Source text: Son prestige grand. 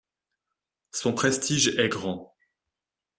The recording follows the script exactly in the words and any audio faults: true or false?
false